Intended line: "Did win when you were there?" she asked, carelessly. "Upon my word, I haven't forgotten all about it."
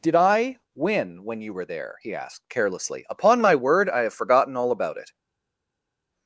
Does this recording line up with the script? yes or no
no